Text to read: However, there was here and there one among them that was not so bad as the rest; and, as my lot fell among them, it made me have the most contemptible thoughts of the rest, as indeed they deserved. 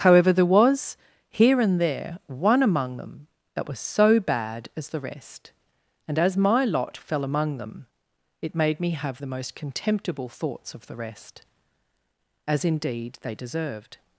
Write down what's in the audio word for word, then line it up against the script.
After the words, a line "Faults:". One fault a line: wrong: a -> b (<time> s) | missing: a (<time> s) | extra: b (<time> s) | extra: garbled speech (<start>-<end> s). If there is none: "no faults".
However, there was here and there one among them that was so bad as the rest; and, as my lot fell among them, it made me have the most contemptible thoughts of the rest, as indeed they deserved.
Faults:
missing: not (3.8 s)